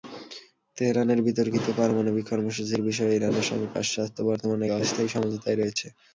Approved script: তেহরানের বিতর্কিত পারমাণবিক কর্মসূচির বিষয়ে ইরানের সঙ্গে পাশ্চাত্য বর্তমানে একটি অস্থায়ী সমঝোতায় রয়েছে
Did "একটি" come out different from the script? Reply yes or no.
yes